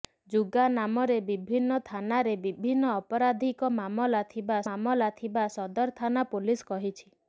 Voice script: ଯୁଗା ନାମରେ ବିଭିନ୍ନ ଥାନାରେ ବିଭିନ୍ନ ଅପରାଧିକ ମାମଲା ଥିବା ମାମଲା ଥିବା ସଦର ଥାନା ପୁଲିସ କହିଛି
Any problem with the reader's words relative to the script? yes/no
no